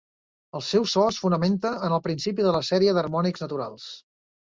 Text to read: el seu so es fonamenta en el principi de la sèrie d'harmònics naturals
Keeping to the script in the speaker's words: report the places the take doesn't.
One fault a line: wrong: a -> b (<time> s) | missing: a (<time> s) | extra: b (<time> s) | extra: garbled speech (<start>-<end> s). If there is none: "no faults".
no faults